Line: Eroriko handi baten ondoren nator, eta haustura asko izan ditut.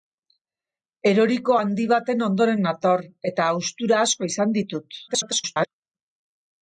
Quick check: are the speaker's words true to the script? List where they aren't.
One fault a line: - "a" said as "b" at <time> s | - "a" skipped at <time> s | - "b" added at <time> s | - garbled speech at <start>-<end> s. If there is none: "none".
- garbled speech at 5.1-5.7 s